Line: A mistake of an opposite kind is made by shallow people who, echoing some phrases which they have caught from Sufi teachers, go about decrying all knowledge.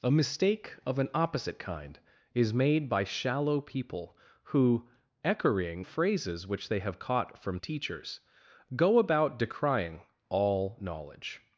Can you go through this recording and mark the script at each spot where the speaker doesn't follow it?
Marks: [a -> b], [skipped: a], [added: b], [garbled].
A mistake of an opposite kind is made by shallow people who, echoing [skipped: some] phrases which they have caught from [skipped: Sufi] teachers, go about decrying all knowledge.